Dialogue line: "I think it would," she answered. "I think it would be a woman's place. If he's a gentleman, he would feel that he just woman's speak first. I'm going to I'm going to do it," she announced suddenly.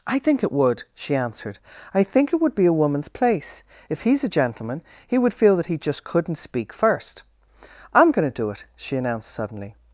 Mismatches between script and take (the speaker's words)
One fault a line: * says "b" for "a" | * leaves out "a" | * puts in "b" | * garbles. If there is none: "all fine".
* says "couldn't" for "woman's"
* leaves out "I'm going to"